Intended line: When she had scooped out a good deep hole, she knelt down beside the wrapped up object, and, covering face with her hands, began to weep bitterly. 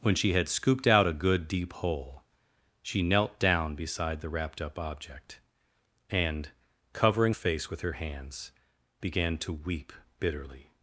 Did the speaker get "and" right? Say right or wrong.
right